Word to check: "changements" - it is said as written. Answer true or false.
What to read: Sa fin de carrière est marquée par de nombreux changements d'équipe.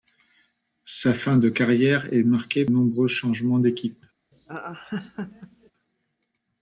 true